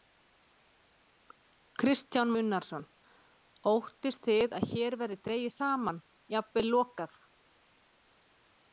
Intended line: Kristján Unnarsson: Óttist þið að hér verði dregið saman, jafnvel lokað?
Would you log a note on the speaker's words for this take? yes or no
no